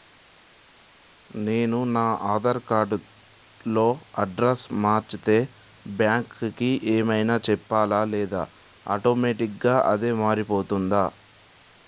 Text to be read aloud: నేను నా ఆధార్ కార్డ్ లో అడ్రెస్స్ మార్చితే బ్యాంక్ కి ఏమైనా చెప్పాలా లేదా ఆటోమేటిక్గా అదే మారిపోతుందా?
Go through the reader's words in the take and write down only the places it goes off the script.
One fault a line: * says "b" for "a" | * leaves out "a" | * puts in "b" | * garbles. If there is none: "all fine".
all fine